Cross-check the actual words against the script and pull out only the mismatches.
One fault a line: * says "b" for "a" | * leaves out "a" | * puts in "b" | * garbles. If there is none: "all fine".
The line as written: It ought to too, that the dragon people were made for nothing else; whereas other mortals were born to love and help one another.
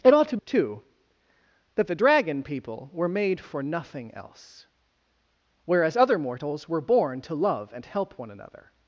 all fine